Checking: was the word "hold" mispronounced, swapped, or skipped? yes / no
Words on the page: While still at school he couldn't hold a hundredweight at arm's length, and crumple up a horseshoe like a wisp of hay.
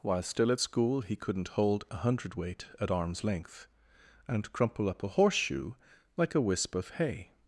no